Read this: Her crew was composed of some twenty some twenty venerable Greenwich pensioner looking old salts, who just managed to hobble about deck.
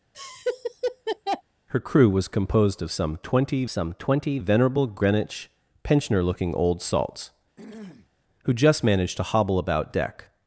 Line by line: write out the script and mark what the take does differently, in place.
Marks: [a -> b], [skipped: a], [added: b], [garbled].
Her crew was composed of some twenty some twenty venerable Greenwich pensioner looking old salts, who just managed to hobble about deck.